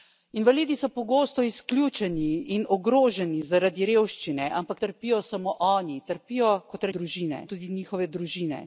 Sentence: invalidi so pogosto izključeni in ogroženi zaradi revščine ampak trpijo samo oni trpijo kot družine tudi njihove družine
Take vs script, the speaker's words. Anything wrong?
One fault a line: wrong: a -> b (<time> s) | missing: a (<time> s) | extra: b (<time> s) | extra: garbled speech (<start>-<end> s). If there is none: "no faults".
no faults